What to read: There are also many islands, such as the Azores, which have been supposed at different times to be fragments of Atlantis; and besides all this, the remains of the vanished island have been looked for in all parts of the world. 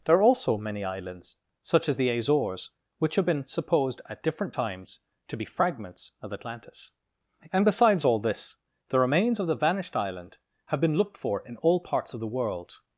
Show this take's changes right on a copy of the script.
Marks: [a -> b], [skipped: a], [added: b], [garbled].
There are also many islands, such as the Azores, which have been supposed at different times to be fragments of Atlantis; and besides all this, the remains of the vanished island have been looked for in all parts of the world.